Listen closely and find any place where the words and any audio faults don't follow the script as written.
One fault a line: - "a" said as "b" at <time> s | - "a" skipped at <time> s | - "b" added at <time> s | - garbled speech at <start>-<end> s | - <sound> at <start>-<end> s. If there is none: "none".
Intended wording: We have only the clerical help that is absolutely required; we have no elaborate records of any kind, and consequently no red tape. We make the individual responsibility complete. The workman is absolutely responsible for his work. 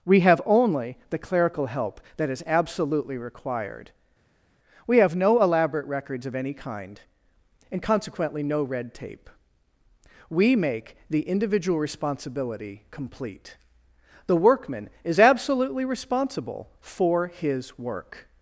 none